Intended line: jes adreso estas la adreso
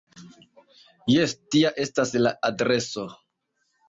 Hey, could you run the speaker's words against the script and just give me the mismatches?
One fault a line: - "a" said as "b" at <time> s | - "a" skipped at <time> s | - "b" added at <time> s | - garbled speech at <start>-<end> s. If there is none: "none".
- "adreso" said as "tia" at 1.5 s